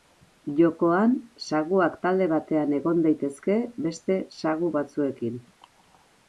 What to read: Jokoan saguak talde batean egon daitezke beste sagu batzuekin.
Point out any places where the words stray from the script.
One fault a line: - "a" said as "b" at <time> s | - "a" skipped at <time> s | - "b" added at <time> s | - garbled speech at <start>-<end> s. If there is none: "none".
none